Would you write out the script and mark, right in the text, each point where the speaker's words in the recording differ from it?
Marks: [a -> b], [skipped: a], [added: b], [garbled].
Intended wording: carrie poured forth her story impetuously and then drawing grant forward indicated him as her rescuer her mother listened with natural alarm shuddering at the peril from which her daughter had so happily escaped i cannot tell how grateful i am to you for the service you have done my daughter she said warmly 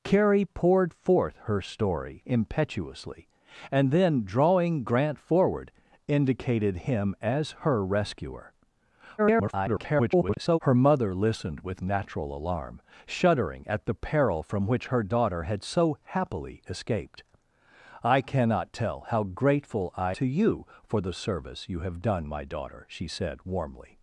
carrie poured forth her story impetuously and then drawing grant forward indicated him as her rescuer [garbled] her mother listened with natural alarm shuddering at the peril from which her daughter had so happily escaped i cannot tell how grateful i [skipped: am] to you for the service you have done my daughter she said warmly